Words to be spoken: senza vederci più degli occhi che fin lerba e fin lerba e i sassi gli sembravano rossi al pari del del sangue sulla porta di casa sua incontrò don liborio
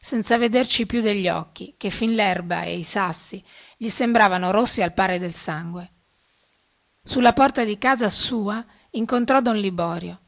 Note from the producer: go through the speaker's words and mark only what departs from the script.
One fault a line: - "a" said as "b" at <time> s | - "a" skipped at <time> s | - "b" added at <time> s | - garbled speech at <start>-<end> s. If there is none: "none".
- "fin lerba e" skipped at 2.8 s
- "del" skipped at 5.3 s